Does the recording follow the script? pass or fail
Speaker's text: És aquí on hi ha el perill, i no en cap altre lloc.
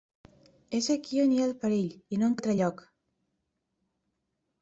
fail